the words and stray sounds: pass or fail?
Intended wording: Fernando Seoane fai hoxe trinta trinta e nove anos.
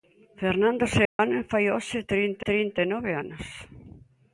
fail